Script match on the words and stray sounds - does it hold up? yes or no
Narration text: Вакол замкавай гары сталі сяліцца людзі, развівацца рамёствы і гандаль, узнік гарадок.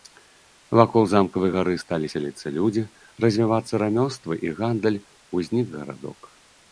yes